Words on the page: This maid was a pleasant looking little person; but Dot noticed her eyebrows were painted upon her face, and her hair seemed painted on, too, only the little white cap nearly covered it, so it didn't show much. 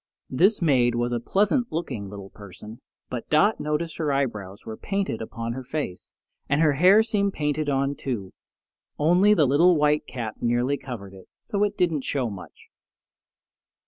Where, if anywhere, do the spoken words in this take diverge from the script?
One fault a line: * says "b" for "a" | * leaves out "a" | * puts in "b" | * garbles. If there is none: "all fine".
all fine